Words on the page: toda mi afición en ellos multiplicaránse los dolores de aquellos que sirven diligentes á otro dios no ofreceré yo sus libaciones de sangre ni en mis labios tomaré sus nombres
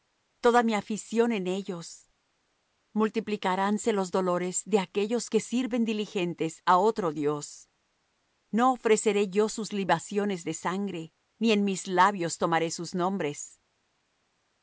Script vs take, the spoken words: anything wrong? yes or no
no